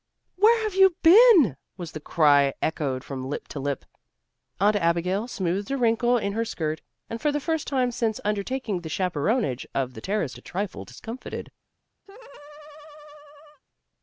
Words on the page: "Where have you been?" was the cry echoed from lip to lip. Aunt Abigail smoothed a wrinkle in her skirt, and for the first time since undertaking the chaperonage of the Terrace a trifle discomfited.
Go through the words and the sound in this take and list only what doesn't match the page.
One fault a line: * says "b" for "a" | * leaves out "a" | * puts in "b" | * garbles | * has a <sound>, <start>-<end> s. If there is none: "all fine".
* has a laugh, 12.1-13.6 s